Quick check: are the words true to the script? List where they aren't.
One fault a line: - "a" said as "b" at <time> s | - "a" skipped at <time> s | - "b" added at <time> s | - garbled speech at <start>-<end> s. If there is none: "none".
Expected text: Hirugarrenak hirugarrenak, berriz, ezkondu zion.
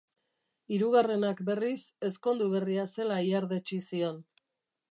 - "hirugarrenak" skipped at 1.4 s
- "berria zela ihardetsi" added at 2.5 s